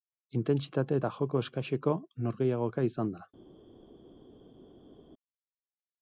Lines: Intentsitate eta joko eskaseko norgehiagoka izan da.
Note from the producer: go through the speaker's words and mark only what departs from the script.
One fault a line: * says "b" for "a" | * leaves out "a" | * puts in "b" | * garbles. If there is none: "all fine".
all fine